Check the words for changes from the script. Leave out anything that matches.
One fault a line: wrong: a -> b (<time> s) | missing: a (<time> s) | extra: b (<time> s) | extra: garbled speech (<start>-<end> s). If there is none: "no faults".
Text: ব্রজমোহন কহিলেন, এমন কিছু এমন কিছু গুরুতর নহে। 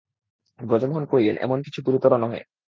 missing: এমন কিছু (1.8 s)